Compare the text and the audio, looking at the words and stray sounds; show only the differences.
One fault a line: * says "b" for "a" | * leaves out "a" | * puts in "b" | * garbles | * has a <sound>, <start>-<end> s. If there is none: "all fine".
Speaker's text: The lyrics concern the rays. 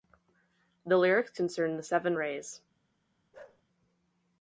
* puts in "seven"
* has a bark, 3.3-3.6 s